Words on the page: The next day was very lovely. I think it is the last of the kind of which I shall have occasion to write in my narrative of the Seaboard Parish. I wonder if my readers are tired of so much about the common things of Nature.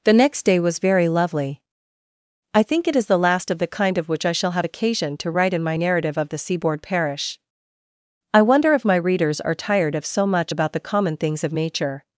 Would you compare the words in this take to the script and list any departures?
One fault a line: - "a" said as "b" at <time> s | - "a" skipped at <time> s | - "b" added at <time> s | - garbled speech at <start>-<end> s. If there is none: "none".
none